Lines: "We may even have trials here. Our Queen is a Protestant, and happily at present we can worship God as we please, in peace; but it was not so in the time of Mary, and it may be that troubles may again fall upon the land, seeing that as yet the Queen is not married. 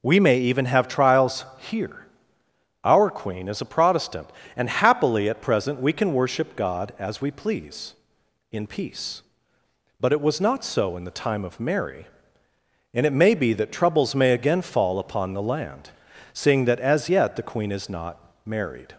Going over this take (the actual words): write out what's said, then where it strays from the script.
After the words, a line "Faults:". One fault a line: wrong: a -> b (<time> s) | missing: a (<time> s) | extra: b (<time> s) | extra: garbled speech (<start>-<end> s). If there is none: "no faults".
"We may even have trials here. Our Queen is a Protestant, and happily at present we can worship God as we please, in peace; but it was not so in the time of Mary, and it may be that troubles may again fall upon the land, seeing that as yet the Queen is not married.
Faults:
no faults